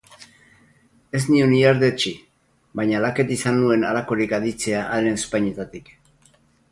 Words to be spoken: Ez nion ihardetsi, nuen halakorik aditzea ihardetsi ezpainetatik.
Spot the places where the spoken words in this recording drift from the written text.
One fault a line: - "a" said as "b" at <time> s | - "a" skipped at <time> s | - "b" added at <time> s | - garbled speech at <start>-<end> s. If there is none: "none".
- "baina laket izan" added at 2.8 s
- "ihardetsi" said as "haren" at 5.0 s